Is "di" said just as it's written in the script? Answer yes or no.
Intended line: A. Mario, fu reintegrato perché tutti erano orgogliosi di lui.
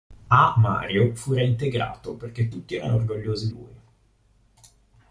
no